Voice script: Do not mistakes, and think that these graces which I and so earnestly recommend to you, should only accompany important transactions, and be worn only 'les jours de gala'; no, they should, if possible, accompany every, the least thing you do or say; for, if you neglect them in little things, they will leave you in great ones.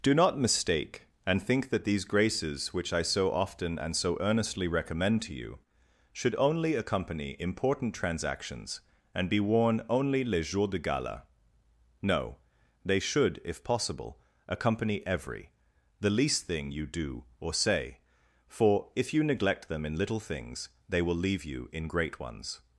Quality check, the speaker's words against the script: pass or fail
fail